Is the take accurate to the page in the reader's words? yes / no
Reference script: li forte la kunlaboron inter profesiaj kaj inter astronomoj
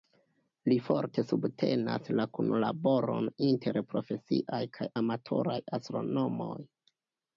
no